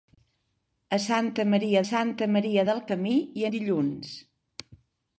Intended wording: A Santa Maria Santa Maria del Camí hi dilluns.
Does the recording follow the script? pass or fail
pass